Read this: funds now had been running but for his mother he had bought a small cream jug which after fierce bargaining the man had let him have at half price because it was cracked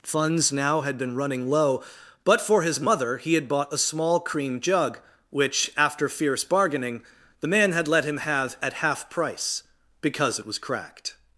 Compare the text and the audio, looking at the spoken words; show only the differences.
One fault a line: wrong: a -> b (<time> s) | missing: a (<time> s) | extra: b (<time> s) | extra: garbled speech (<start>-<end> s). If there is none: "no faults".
extra: low (1.5 s)